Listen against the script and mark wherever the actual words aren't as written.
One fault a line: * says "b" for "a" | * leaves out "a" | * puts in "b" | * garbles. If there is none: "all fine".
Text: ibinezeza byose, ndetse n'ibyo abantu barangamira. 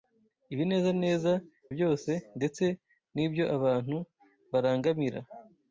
all fine